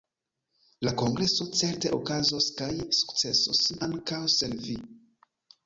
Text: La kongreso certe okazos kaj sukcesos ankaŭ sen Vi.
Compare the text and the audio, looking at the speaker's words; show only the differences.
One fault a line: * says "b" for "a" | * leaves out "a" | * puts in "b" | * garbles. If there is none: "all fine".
all fine